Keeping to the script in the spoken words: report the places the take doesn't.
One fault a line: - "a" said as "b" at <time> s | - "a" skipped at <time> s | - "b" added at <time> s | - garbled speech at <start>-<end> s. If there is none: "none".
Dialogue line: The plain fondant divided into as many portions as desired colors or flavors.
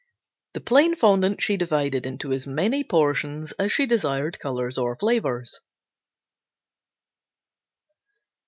- "she" added at 1.4 s
- "she" added at 3.7 s